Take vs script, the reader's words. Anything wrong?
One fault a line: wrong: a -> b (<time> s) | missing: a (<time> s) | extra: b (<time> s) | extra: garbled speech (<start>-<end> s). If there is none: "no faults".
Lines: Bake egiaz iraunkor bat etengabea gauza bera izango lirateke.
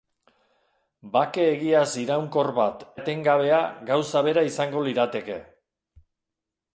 no faults